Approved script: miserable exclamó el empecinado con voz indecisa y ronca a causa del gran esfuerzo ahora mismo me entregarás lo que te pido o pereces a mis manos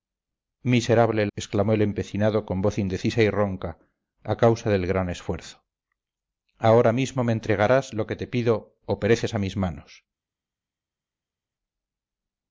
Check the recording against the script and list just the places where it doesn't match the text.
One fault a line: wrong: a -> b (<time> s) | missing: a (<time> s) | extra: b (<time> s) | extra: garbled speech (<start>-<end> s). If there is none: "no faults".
no faults